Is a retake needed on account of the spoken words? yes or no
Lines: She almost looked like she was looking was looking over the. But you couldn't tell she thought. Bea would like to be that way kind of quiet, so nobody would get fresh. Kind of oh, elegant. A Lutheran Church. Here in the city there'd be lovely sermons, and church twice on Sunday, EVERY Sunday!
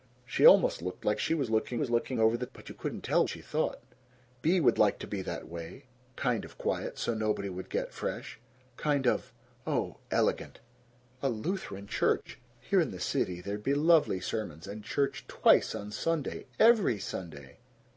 no